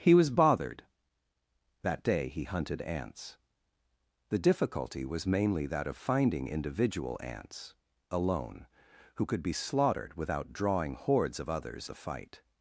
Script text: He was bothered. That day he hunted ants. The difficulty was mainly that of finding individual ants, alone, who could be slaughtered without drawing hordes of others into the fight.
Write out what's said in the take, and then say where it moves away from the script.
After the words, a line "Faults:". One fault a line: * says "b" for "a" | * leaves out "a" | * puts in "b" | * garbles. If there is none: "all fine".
He was bothered. That day he hunted ants. The difficulty was mainly that of finding individual ants, alone, who could be slaughtered without drawing hordes of others the fight.
Faults:
* leaves out "into"